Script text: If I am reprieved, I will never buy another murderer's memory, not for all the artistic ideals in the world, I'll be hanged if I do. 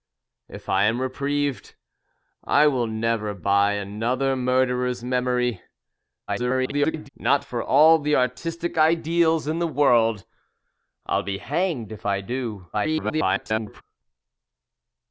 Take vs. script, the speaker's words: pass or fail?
fail